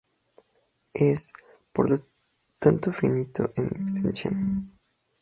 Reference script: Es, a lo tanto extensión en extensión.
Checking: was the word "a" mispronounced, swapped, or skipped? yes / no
yes